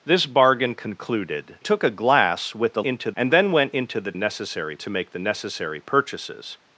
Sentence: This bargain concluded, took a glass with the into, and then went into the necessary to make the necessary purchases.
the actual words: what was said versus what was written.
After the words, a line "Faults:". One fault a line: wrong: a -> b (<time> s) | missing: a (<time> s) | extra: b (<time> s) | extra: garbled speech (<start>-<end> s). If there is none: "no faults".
This bargain concluded, took a glass with the into, and then went into the necessary to make the necessary purchases.
Faults:
no faults